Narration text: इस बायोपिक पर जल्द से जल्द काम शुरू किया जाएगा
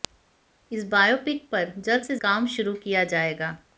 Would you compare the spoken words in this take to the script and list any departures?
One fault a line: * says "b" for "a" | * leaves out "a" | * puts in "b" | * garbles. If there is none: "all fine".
* leaves out "जल्द"